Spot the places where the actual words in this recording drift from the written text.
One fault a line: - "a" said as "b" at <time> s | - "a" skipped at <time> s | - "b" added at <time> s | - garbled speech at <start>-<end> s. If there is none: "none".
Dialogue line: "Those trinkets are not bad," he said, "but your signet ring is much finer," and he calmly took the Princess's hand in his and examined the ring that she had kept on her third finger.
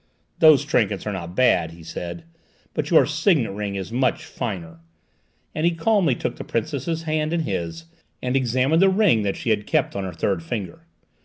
none